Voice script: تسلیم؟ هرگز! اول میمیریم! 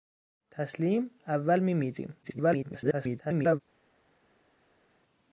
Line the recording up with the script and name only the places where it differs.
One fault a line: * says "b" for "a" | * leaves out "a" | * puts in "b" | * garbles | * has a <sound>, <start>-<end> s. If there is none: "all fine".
* leaves out "هرگز"
* garbles